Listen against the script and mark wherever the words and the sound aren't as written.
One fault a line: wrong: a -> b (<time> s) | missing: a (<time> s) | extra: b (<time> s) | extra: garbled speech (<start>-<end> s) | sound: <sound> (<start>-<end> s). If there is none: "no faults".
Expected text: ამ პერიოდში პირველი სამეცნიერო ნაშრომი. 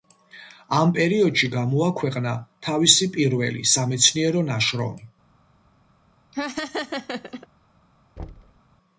extra: გამოაქვეყნა თავისი (1.5 s)
sound: laugh (6.3-7.5 s)
sound: thud (8.2-8.6 s)